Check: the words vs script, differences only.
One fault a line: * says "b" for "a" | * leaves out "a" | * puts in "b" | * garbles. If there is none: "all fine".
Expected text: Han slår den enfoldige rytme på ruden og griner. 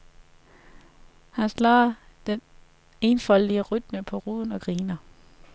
all fine